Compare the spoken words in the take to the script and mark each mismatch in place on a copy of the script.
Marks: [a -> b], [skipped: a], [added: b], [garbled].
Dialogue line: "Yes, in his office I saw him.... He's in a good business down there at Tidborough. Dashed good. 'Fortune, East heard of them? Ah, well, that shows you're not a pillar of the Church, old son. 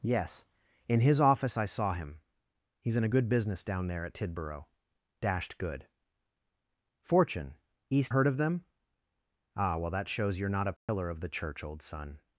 "Yes, in his office I saw him.... He's in a good business down there at Tidborough. Dashed good. 'Fortune, East heard of them? Ah, well, that shows you're not a pillar of the Church, old son.